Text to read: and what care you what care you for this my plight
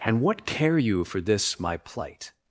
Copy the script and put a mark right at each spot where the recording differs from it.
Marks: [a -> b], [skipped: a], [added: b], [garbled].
and what care you [skipped: what care you] for this my plight